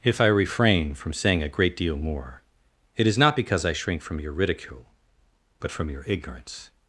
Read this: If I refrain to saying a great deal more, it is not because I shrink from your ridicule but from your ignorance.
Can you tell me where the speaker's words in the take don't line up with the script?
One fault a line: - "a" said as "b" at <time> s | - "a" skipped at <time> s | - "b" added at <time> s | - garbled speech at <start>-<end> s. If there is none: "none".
- "to" said as "from" at 0.9 s